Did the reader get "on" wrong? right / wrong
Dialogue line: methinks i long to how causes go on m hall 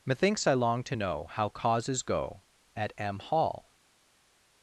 wrong